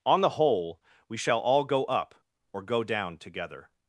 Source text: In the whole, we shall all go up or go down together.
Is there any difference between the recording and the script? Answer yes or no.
yes